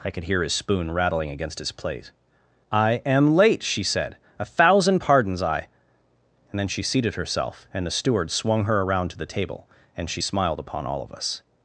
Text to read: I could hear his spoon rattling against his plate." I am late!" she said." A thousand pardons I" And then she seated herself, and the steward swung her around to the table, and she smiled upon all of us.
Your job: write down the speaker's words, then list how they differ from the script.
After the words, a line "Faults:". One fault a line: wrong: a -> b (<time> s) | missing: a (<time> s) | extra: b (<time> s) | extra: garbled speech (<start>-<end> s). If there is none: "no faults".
I could hear his spoon rattling against his plate." I am late!" she said." A thousand pardons I" And then she seated herself, and the steward swung her around to the table, and she smiled upon all of us.
Faults:
no faults